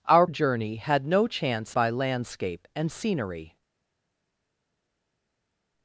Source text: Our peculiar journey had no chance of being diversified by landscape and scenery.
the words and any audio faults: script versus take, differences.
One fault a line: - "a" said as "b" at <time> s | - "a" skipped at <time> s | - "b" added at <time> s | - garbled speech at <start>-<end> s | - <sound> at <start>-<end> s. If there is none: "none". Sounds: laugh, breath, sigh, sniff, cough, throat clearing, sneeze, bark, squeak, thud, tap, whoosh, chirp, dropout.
- "peculiar" skipped at 0.2 s
- "of being diversified" skipped at 1.7 s